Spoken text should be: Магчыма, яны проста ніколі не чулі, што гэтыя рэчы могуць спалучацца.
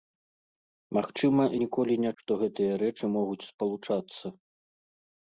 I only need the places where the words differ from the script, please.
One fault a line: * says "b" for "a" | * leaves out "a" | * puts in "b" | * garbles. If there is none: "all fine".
* leaves out "яны проста"
* leaves out "чулі"